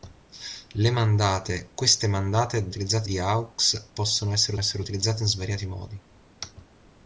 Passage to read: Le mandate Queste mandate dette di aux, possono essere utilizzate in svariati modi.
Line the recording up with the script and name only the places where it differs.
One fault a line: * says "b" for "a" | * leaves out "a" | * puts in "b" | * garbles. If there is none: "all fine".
* says "utilizzate" for "dette"
* puts in "essere"